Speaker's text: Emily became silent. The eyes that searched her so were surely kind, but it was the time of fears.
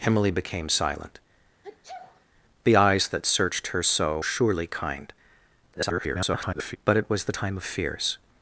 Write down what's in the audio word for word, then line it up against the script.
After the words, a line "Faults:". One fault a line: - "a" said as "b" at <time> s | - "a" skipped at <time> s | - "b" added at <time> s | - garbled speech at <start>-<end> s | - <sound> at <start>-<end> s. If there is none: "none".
Emily became silent. The eyes that searched her so surely kind, [garbled] but it was the time of fears.
Faults:
- sneeze at 1.6-2.3 s
- "were" skipped at 4.2 s
- garbled speech at 5.7-6.8 s